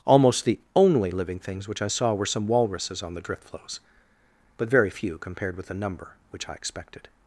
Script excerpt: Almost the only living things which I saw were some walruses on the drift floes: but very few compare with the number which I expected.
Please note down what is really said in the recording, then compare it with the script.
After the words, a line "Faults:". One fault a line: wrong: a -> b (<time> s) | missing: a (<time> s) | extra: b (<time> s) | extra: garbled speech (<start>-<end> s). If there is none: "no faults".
Almost the only living things which I saw were some walruses on the drift floes: but very few compared with the number which I expected.
Faults:
wrong: compare -> compared (5.2 s)